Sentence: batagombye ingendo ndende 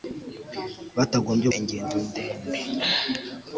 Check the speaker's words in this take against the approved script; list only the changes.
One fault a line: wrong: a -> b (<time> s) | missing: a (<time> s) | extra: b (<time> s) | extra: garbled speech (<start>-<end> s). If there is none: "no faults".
no faults